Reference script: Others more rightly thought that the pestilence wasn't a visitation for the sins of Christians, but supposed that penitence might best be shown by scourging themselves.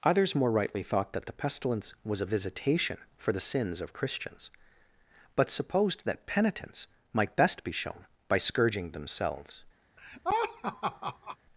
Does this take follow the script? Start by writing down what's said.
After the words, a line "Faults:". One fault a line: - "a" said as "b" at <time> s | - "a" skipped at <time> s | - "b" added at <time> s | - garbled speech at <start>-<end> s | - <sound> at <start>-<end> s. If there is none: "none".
Others more rightly thought that the pestilence was a visitation for the sins of Christians, but supposed that penitence might best be shown by scourging themselves.
Faults:
- "wasn't" said as "was" at 2.0 s
- laugh at 10.0-11.4 s